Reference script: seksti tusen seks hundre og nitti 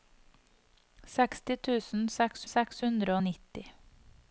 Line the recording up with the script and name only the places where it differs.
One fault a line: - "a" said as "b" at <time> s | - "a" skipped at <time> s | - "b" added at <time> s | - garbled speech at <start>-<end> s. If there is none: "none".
- "seks" added at 2.5 s